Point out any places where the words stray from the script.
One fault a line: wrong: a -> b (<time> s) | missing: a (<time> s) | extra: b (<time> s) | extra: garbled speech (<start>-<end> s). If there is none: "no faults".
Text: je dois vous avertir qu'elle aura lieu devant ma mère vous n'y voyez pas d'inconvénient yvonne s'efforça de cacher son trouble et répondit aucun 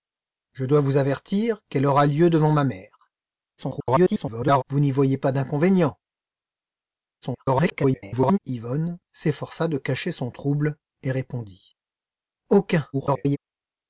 extra: garbled speech (3.6-4.6 s)
extra: garbled speech (7.2-8.4 s)
extra: garbled speech (12.9-13.4 s)